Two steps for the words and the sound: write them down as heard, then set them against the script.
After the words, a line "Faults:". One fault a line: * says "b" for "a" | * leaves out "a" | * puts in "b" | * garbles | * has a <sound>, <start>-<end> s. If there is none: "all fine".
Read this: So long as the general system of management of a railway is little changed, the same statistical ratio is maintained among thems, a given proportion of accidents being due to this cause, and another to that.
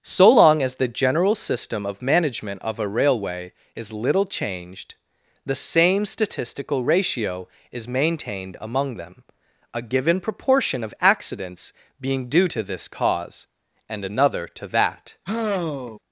So long as the general system of management of a railway is little changed, the same statistical ratio is maintained among them, a given proportion of accidents being due to this cause, and another to that.
Faults:
* says "them" for "thems"
* has a sigh, 15.3-16.0 s